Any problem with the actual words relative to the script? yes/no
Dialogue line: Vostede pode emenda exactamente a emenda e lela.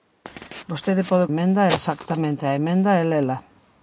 no